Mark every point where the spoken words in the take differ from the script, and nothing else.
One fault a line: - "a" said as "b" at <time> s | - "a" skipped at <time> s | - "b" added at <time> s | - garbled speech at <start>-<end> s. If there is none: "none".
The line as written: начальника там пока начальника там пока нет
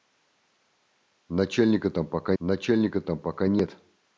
none